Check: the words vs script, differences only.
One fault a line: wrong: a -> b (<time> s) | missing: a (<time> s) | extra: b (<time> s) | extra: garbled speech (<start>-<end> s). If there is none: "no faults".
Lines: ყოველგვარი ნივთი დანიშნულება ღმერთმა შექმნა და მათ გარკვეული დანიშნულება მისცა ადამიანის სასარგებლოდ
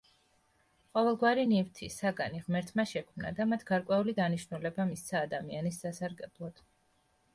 wrong: დანიშნულება -> საგანი (2.0 s)